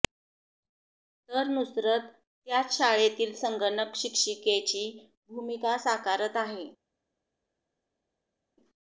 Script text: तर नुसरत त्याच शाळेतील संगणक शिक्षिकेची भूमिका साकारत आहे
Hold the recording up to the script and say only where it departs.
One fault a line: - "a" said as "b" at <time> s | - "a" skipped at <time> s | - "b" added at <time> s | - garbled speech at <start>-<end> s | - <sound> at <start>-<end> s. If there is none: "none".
none